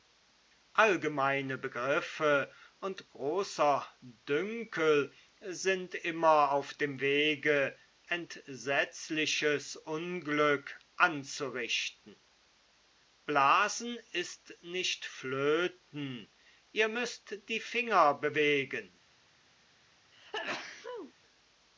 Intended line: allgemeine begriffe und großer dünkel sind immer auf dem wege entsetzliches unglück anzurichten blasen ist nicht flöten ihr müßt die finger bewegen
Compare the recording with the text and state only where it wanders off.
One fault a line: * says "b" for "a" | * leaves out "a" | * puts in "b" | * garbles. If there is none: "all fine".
all fine